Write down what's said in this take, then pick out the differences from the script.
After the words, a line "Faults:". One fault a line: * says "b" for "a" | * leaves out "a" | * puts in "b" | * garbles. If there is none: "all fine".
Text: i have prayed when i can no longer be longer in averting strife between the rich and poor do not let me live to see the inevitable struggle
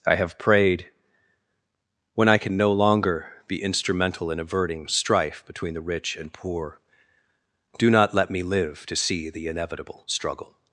i have prayed when i can no longer be instrumental in averting strife between the rich and poor do not let me live to see the inevitable struggle
Faults:
* says "instrumental" for "longer"